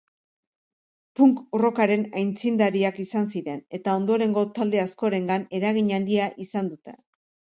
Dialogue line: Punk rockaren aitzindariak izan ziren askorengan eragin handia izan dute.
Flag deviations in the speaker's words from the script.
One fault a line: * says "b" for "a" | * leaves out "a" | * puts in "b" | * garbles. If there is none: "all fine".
* puts in "eta ondorengo talde"